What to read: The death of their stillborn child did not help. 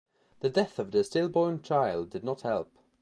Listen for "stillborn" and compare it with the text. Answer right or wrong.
right